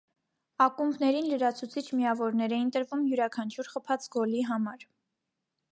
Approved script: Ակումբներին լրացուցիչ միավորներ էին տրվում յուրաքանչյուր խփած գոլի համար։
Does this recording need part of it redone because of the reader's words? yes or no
no